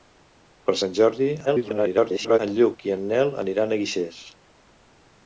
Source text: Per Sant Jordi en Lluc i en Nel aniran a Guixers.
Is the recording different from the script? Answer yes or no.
yes